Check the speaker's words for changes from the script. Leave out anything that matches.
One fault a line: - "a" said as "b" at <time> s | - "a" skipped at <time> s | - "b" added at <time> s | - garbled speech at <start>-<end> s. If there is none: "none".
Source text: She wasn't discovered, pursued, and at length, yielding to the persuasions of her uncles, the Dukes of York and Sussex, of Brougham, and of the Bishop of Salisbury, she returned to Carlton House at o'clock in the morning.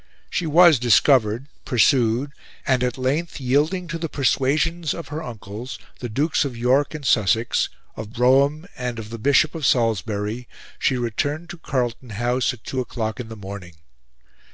- "wasn't" said as "was" at 0.5 s
- "two" added at 12.6 s